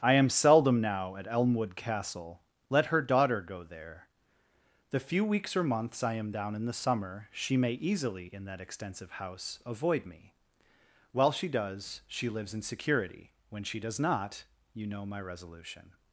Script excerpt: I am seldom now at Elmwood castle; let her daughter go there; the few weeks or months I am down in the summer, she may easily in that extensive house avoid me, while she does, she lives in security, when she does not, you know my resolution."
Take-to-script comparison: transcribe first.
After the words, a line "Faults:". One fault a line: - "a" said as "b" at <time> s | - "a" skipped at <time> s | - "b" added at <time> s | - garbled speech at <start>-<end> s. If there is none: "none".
I am seldom now at Elmwood castle; let her daughter go there; the few weeks or months I am down in the summer, she may easily in that extensive house avoid me, while she does, she lives in security, when she does not, you know my resolution."
Faults:
none